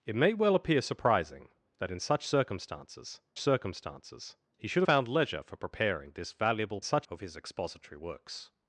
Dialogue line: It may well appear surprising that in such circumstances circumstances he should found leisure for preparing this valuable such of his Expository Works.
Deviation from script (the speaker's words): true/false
false